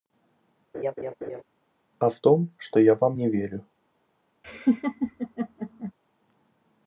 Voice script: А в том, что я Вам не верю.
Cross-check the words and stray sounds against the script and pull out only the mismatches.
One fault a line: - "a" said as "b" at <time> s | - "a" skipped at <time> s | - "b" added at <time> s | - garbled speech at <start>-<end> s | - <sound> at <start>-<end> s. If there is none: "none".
- laugh at 0.7-1.4 s
- laugh at 4.4-5.9 s